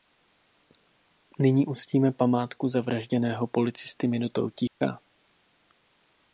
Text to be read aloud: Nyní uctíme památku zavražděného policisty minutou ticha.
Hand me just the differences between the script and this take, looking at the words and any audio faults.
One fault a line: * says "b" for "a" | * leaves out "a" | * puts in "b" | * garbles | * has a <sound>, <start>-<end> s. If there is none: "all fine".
* has a dropout, 4.7-4.8 s